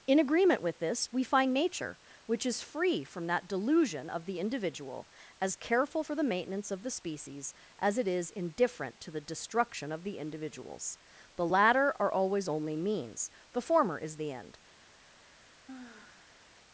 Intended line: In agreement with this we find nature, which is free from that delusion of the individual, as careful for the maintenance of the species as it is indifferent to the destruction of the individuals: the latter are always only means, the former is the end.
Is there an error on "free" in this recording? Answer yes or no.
no